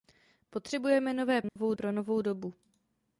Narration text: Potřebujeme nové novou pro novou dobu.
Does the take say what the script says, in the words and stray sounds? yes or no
no